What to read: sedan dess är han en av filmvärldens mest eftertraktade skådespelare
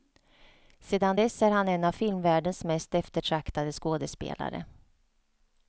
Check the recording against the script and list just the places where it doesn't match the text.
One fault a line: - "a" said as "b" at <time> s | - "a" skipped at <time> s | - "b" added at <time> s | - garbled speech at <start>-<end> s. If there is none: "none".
none